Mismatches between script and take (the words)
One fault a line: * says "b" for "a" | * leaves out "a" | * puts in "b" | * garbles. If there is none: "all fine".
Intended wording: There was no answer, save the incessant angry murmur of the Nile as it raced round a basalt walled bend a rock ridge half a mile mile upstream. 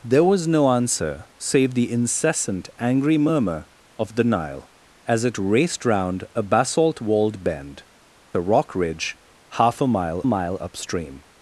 all fine